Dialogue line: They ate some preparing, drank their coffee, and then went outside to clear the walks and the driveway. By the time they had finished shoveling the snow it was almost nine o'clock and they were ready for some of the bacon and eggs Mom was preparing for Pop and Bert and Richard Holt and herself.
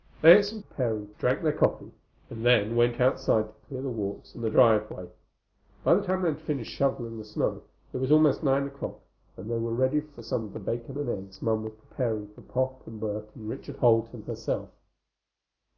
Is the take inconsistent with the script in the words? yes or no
no